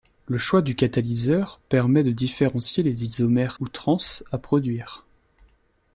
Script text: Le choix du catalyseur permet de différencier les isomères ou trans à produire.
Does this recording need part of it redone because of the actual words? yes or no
no